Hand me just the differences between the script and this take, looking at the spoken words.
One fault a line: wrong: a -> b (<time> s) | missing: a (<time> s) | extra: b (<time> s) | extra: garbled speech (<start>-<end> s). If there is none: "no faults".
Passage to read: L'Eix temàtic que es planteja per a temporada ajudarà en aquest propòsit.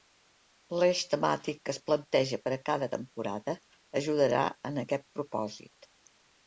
extra: cada (2.7 s)